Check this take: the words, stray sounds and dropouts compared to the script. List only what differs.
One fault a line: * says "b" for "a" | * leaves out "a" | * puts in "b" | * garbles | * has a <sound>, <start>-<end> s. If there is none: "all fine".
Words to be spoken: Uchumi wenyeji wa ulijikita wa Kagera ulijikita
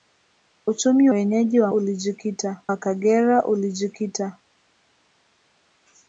all fine